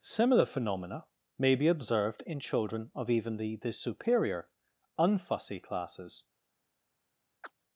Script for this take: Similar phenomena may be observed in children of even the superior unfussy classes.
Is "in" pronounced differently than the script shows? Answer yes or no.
no